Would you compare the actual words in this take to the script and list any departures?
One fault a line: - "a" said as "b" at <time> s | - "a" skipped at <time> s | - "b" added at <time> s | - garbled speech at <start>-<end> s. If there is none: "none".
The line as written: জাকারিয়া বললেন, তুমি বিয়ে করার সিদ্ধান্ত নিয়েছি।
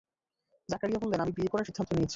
- "তুমি" said as "আমি" at 1.2 s